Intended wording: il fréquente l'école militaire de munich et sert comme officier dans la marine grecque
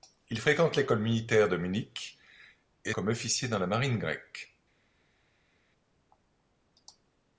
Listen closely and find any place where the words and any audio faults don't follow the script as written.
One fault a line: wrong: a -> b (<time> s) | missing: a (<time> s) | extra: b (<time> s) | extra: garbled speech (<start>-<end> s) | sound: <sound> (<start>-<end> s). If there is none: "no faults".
missing: sert (2.9 s)